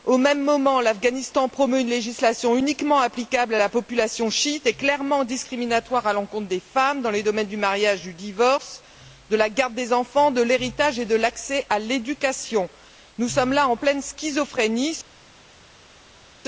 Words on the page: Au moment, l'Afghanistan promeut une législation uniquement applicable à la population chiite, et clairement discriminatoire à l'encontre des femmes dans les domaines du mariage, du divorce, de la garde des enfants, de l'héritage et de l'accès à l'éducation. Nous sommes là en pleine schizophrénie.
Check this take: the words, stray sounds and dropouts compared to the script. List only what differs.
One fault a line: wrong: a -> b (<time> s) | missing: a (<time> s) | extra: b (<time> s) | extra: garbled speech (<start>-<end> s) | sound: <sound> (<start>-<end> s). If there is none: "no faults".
extra: même (0.2 s)